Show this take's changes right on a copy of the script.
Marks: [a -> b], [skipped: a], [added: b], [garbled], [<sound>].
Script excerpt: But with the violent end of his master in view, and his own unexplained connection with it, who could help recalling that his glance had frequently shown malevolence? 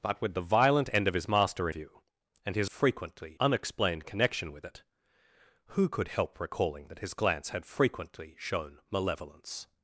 But with the violent end of his master [skipped: in] view, and his [own -> frequently] unexplained connection with it, who could help recalling that his glance had frequently shown malevolence?